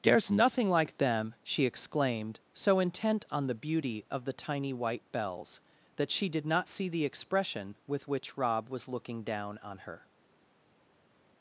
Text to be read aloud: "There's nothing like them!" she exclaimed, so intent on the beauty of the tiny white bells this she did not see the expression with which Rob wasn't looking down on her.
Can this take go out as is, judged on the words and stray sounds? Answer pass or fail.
fail